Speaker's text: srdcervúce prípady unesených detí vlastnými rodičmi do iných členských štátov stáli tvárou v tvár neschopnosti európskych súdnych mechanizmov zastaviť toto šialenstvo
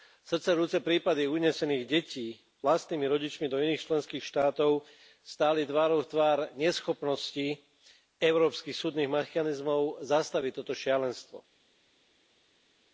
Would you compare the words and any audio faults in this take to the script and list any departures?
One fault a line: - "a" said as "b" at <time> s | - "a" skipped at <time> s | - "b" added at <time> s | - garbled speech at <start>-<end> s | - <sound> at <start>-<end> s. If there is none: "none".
none